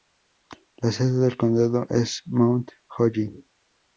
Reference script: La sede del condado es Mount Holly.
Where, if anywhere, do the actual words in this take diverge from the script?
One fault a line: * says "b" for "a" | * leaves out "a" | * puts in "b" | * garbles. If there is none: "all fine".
all fine